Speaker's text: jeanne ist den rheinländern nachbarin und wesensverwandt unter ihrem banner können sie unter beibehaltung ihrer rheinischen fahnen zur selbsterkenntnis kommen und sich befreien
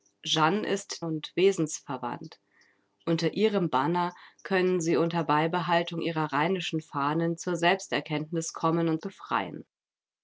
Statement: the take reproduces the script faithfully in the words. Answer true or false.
false